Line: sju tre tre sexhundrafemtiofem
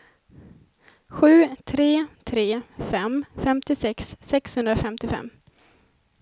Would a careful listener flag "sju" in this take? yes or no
no